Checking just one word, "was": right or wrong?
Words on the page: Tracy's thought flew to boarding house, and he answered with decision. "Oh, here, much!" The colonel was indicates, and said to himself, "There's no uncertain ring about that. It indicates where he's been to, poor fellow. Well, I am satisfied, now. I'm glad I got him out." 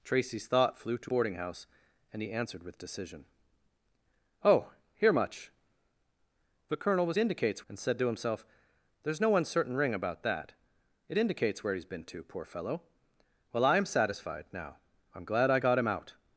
right